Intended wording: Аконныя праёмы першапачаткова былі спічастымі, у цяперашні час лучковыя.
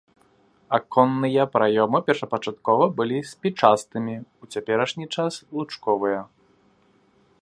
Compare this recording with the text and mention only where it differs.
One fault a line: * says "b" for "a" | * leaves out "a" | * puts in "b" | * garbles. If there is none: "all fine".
all fine